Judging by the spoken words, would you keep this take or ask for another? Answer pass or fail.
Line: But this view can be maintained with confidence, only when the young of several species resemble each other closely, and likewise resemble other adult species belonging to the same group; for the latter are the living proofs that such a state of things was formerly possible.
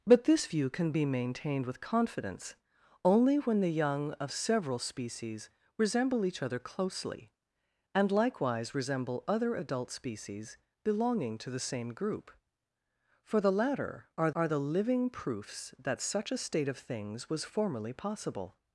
fail